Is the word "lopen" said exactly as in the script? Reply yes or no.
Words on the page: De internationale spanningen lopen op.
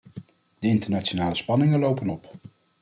yes